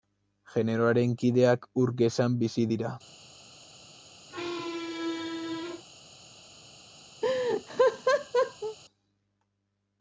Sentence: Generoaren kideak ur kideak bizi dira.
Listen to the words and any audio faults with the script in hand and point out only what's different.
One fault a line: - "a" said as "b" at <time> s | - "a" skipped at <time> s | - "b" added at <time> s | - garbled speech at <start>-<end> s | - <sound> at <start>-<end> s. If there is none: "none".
- "kideak" said as "gezan" at 2.0 s
- squeak at 4.3-5.8 s
- laugh at 7.2-8.8 s